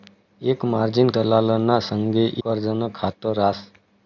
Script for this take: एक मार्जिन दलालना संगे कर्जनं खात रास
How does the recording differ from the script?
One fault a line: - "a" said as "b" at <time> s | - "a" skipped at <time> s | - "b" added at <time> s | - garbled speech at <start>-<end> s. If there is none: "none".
none